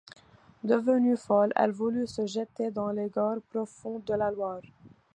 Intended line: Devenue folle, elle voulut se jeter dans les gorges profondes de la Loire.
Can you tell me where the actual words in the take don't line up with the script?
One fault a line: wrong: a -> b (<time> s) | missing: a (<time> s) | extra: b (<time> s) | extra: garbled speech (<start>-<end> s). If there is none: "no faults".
no faults